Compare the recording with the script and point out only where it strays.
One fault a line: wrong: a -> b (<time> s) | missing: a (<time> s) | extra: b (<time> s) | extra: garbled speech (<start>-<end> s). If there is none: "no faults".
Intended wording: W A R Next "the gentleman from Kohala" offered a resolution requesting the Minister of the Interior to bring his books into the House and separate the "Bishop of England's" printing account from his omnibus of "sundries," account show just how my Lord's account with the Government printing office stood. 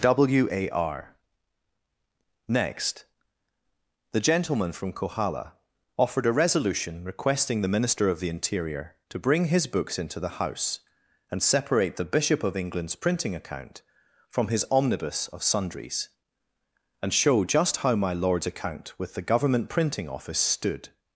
wrong: account -> and (17.0 s)